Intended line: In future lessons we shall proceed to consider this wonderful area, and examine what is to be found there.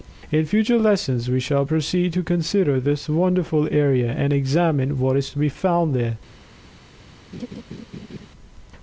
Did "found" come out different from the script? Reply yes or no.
no